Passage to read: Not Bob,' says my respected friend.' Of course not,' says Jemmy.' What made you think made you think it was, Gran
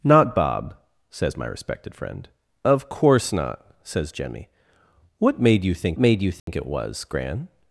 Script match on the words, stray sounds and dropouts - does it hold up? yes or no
no